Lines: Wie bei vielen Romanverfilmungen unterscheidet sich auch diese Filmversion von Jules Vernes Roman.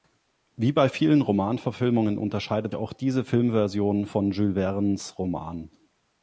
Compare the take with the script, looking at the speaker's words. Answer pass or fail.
fail